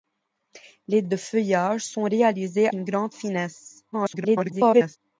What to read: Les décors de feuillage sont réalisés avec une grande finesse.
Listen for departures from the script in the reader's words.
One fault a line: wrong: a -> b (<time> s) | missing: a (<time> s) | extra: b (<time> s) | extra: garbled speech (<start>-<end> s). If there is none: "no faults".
missing: décors (1.0 s)
missing: avec (2.7 s)
extra: garbled speech (3.9-5.0 s)